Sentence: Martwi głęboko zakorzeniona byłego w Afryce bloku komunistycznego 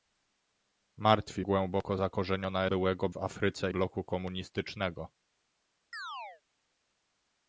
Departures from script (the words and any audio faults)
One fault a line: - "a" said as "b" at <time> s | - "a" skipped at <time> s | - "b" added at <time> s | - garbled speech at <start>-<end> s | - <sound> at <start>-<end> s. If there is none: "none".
- chirp at 5.9-6.4 s